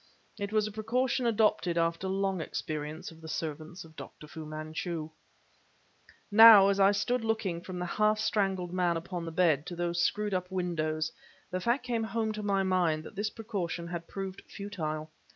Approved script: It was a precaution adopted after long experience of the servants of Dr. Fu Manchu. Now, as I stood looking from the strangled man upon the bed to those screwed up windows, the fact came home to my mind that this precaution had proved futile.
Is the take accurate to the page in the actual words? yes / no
no